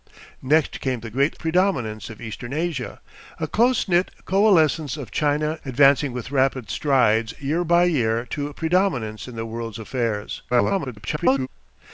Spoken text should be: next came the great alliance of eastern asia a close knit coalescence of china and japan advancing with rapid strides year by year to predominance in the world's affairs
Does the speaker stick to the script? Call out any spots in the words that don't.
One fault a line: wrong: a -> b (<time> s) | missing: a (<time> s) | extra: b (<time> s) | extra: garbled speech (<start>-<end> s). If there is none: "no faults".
wrong: alliance -> predominance (1.4 s)
missing: and japan (5.6 s)
extra: garbled speech (10.5-11.5 s)